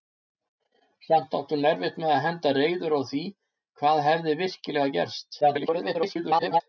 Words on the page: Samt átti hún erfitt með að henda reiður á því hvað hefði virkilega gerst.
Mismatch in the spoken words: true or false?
true